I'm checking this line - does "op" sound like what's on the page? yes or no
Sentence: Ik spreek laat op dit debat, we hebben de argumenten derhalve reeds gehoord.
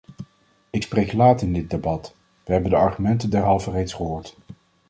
no